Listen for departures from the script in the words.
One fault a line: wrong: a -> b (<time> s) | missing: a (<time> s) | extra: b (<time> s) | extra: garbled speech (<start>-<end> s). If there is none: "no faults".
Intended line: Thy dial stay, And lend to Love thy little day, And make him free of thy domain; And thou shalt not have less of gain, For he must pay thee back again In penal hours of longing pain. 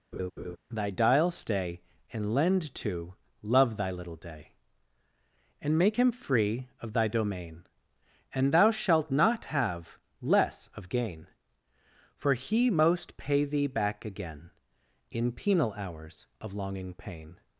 wrong: must -> most (12.7 s)